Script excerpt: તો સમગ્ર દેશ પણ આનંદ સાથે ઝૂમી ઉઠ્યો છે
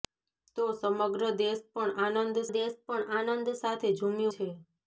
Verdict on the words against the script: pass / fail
fail